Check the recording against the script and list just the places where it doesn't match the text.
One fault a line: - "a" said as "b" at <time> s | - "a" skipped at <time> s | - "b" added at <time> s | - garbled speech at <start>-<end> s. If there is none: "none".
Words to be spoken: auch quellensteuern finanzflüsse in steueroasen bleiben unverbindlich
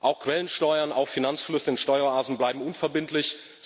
- "auf" added at 0.9 s